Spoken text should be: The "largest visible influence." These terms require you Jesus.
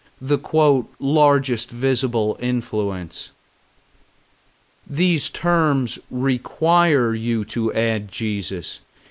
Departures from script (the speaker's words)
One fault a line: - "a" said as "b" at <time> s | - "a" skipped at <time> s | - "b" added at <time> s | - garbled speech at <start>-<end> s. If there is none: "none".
- "to add" added at 7.5 s